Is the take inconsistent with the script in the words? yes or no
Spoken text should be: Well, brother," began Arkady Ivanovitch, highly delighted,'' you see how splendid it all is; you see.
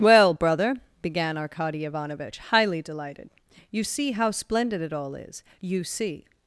no